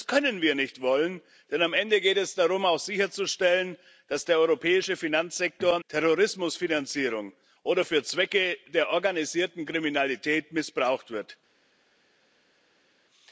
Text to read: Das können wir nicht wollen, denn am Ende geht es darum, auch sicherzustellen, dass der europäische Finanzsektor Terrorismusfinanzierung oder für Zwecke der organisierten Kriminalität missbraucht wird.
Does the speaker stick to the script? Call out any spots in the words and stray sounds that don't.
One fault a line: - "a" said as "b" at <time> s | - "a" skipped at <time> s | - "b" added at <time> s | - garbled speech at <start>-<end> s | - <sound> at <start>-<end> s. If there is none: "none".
none